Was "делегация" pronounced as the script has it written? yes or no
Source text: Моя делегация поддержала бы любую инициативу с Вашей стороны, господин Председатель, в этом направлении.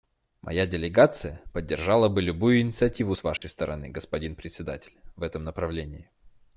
yes